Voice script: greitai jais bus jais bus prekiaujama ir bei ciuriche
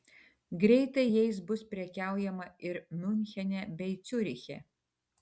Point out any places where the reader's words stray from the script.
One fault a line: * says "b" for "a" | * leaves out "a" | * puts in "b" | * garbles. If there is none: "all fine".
* leaves out "jais bus"
* puts in "miunchene"